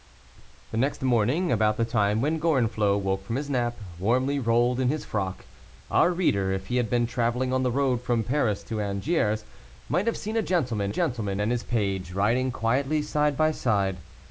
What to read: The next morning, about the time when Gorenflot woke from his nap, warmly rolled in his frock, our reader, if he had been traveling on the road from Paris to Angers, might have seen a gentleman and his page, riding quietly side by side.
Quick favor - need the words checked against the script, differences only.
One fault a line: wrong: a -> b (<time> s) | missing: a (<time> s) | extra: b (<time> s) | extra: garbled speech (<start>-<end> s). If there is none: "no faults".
extra: gentleman (10.9 s)